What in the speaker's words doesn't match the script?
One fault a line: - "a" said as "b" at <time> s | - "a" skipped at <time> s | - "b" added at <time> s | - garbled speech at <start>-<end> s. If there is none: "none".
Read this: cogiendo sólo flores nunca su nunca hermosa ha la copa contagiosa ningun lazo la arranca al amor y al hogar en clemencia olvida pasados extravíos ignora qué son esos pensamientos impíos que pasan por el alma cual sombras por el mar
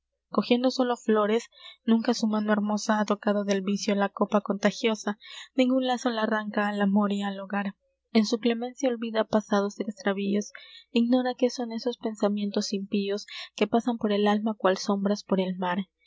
- "nunca" said as "mano" at 2.2 s
- "tocado del vicio" added at 3.0 s
- "su" added at 8.2 s